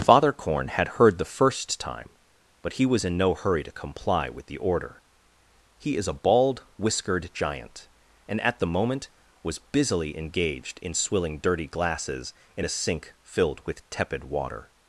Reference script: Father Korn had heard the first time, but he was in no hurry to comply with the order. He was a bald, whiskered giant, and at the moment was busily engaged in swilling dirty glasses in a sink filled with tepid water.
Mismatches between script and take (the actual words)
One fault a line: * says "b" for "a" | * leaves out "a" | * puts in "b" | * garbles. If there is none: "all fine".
* says "is" for "was"